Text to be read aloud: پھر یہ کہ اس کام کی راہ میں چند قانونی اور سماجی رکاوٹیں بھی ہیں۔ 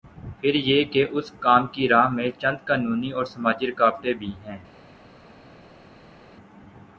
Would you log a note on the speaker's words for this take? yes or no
no